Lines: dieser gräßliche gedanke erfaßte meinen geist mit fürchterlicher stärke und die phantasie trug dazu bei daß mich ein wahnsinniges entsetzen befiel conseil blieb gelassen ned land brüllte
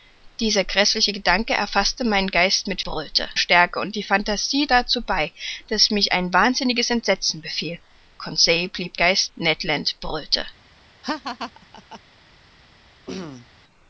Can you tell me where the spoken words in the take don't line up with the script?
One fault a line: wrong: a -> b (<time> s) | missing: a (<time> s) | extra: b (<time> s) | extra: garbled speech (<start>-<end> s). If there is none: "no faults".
wrong: fürchterlicher -> brüllte (2.8 s)
missing: trug (4.7 s)
wrong: gelassen -> geist (9.0 s)